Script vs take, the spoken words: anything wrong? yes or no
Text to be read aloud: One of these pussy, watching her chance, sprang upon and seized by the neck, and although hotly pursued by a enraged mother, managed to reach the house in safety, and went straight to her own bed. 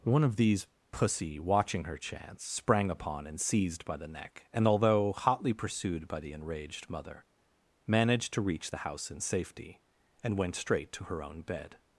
yes